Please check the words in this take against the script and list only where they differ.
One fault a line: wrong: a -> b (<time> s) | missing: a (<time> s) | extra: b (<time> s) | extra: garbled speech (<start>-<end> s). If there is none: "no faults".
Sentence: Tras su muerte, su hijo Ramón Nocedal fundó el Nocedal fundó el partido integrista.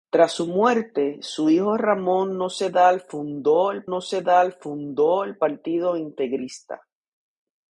no faults